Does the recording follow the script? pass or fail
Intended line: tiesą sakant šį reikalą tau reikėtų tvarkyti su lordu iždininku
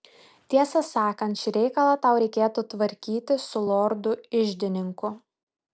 pass